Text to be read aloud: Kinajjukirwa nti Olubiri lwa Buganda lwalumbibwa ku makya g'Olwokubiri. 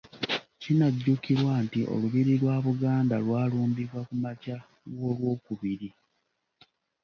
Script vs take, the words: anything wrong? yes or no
no